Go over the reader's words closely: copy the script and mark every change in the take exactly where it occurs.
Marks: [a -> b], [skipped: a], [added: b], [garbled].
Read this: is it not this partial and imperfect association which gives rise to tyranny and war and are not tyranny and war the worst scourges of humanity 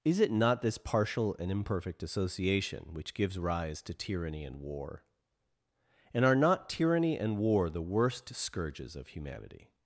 is it not this partial and imperfect association which gives rise to tyranny and war and are not tyranny and war the worst scourges of humanity